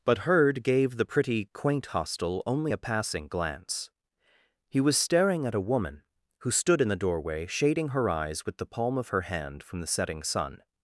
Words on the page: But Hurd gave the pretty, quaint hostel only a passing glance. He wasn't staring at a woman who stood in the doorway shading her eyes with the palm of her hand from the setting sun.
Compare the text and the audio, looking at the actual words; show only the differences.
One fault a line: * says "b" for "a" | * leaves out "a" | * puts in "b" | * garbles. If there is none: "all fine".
* says "was" for "wasn't"